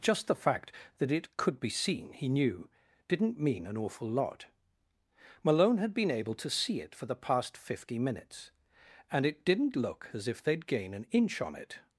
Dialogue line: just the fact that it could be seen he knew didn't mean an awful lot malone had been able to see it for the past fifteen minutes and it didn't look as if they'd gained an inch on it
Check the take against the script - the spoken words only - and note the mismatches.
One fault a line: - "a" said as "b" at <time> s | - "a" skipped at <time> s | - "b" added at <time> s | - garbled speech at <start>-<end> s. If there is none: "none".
- "fifteen" said as "fifty" at 7.6 s
- "gained" said as "gain" at 10.7 s